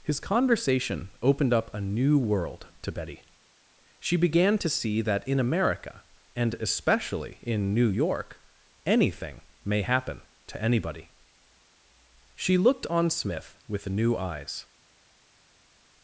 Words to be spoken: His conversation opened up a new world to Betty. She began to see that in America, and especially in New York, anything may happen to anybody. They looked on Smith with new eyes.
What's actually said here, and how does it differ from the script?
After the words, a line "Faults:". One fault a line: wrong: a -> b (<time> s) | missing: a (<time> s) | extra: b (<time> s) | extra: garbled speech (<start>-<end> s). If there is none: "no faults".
His conversation opened up a new world to Betty. She began to see that in America, and especially in New York, anything may happen to anybody. She looked on Smith with new eyes.
Faults:
wrong: They -> She (12.3 s)